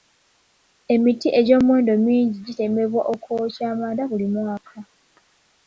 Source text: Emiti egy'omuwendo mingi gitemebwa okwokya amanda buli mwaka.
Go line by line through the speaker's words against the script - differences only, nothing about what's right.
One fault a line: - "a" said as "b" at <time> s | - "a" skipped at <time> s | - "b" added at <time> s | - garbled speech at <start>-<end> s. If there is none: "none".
none